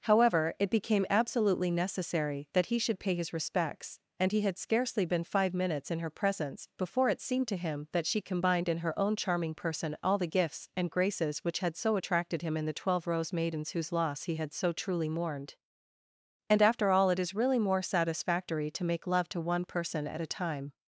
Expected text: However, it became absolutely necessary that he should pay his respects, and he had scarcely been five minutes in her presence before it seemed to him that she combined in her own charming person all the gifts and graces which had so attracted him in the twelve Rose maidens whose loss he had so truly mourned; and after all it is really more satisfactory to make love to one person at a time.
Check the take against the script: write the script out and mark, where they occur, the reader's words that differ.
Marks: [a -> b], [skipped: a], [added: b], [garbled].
However, it became absolutely necessary that he should pay his respects, and he had scarcely been five minutes in her presence before it seemed to him that she combined in her own charming person all the gifts and graces which had so attracted him in the twelve Rose maidens whose loss he had so truly mourned; and after all it is really more satisfactory to make love to one person at a time.